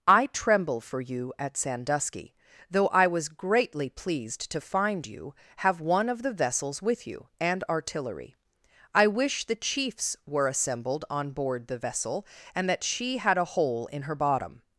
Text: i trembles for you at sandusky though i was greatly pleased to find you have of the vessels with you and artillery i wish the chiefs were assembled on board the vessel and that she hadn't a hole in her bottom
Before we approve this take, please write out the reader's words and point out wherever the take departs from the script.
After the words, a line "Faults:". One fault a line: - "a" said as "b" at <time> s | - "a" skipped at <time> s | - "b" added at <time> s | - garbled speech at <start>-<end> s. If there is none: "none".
i tremble for you at sandusky though i was greatly pleased to find you have one of the vessels with you and artillery i wish the chiefs were assembled on board the vessel and that she had a hole in her bottom
Faults:
- "trembles" said as "tremble" at 0.3 s
- "one" added at 5.8 s
- "hadn't" said as "had" at 13.2 s